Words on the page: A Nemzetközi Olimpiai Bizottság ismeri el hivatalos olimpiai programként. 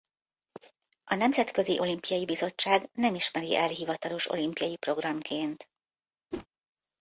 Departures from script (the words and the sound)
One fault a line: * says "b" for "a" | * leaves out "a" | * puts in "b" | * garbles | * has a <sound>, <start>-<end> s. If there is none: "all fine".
* puts in "nem"
* has a whoosh, 6.3-6.5 s